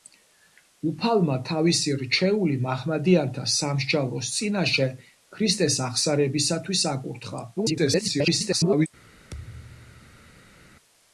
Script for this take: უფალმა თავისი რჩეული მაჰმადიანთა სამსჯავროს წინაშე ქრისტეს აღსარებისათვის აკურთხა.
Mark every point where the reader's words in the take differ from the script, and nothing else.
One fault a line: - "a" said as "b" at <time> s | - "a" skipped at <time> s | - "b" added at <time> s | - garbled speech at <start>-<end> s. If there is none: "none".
- garbled speech at 7.6-8.9 s